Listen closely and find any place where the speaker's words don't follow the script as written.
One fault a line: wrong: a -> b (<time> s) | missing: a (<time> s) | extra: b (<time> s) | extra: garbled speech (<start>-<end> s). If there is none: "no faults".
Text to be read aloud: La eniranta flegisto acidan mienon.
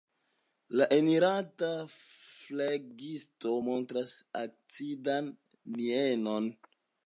extra: montras (3.7 s)